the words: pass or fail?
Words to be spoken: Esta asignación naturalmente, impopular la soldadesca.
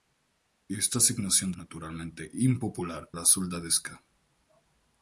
pass